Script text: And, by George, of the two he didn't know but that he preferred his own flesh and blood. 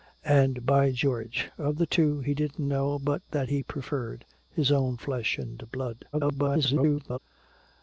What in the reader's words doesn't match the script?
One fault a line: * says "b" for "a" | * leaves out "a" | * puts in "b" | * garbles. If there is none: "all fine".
* garbles